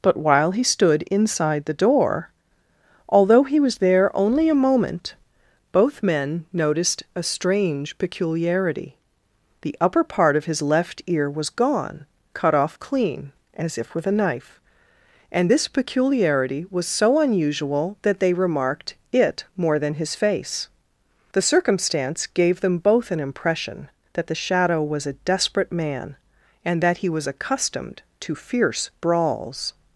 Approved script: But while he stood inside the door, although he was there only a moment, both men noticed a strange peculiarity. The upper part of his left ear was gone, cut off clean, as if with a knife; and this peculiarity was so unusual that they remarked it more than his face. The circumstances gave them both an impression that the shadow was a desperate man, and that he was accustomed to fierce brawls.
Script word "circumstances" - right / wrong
wrong